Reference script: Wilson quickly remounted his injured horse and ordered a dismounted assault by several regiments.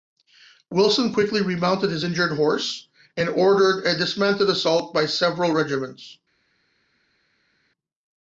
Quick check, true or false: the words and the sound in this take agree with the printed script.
true